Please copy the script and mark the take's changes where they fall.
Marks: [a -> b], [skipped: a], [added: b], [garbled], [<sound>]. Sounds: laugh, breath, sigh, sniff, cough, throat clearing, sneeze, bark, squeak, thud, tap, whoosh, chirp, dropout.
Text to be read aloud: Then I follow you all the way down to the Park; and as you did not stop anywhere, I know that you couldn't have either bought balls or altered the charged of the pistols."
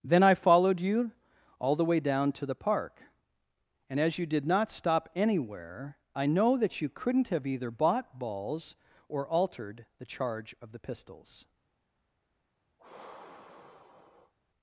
Then I [follow -> followed] you all the way down to the Park; and as you did not stop anywhere, I know that you couldn't have either bought balls or altered the [charged -> charge] of the pistols." [sigh]